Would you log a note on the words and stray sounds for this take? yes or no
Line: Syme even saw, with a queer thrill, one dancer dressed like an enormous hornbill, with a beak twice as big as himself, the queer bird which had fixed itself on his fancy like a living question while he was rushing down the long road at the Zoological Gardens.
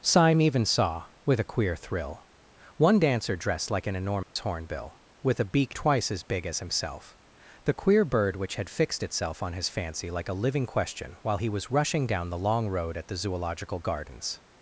yes